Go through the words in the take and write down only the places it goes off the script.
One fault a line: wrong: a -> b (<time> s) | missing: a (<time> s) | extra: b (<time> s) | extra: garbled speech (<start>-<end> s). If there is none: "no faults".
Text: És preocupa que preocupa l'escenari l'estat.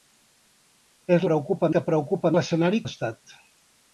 no faults